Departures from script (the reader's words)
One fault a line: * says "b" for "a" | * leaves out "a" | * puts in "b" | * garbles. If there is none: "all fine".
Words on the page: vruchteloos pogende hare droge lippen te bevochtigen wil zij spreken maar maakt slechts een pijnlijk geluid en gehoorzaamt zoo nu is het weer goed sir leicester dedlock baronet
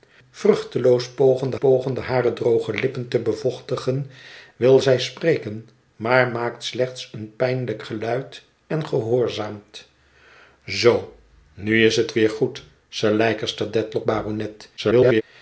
* puts in "pogende"
* garbles